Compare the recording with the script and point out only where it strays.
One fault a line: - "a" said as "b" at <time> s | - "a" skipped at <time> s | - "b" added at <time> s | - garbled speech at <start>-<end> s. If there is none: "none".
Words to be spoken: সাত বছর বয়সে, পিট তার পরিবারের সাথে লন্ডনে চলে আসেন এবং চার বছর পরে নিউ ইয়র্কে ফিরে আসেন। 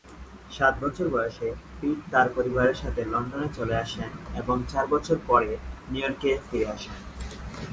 none